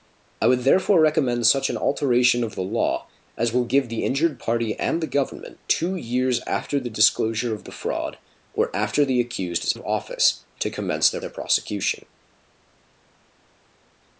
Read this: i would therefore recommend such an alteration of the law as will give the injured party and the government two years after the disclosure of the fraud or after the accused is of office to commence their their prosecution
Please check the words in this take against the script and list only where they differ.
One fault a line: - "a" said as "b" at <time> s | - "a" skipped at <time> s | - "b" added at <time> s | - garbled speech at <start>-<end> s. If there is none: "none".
none